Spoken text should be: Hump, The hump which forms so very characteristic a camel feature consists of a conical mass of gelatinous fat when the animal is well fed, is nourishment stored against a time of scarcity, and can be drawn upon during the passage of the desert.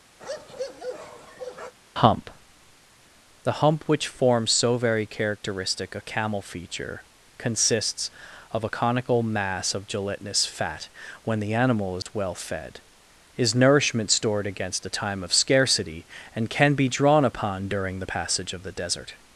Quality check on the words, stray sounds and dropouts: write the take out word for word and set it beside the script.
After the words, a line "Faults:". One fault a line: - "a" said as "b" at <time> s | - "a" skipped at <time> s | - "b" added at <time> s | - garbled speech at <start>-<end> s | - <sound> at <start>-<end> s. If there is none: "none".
Hump, The hump which forms so very characteristic a camel feature consists of a conical mass of gelatinous fat when the animal is well fed, is nourishment stored against a time of scarcity, and can be drawn upon during the passage of the desert.
Faults:
- bark at 0.2-1.7 s
- dropout at 12.0-12.1 s